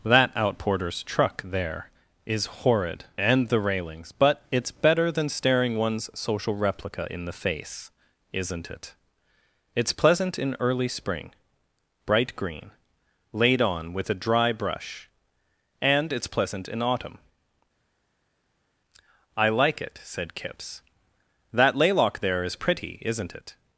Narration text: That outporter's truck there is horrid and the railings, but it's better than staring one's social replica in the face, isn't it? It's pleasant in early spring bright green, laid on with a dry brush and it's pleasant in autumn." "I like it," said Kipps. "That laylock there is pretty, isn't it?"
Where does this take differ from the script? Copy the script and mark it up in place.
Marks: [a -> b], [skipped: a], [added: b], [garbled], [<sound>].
That outporter's truck there is horrid and the railings, but it's better than staring one's social replica in the face, isn't it? It's pleasant in early spring bright green, laid on with a dry brush and it's pleasant in autumn." "I like it," said Kipps. "That laylock there is pretty, isn't it?"